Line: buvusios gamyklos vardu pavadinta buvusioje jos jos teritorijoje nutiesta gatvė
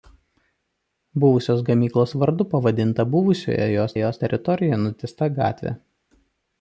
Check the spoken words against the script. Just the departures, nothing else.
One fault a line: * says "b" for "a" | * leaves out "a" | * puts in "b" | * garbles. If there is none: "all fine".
all fine